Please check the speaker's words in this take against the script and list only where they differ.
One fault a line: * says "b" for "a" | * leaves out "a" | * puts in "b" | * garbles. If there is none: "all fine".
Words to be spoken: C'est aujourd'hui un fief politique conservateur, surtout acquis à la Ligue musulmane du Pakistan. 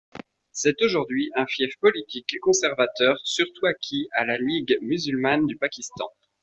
all fine